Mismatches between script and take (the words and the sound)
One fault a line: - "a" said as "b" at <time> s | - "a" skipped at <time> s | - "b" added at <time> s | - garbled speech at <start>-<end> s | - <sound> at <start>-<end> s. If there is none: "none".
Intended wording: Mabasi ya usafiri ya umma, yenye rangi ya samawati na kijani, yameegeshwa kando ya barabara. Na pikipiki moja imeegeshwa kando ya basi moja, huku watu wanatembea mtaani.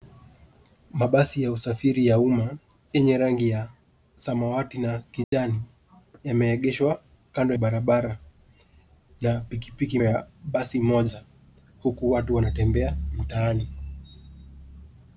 - dropout at 5.2-5.3 s
- "ya" skipped at 7.5 s
- "moja imeegeshwa kando" skipped at 10.0 s